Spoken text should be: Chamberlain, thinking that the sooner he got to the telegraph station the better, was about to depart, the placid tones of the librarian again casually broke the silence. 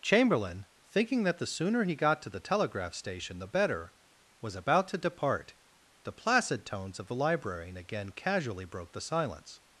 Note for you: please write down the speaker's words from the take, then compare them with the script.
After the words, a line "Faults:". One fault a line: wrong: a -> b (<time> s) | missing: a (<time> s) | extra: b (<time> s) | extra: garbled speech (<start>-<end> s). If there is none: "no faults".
Chamberlain, thinking that the sooner he got to the telegraph station the better, was about to depart, the placid tones of the librarian again casually broke the silence.
Faults:
no faults